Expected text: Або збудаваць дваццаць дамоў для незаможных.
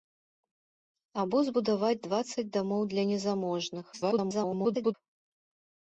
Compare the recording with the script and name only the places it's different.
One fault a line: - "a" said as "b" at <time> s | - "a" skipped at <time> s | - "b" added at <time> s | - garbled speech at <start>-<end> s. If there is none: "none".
- garbled speech at 3.9-4.9 s